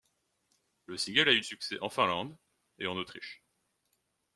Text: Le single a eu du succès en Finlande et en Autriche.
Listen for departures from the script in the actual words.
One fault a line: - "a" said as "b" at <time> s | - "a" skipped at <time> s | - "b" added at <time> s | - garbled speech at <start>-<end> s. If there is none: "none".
- "du" skipped at 1.4 s